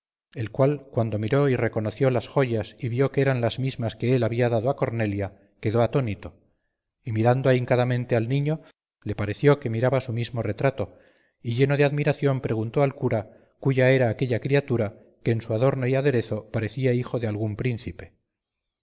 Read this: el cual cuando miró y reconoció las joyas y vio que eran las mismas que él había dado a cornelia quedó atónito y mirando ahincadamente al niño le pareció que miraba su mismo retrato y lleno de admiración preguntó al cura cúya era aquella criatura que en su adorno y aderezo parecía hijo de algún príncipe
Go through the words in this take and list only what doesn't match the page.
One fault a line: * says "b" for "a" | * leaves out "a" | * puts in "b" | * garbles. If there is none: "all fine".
all fine